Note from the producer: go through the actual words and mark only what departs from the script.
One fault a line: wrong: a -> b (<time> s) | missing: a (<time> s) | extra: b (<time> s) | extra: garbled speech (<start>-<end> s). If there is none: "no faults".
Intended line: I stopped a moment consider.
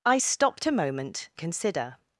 no faults